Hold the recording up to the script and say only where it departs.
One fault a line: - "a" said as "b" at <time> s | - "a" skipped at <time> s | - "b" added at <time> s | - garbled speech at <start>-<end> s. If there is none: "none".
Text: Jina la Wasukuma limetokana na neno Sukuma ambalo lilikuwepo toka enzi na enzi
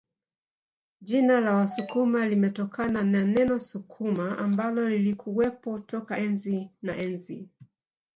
none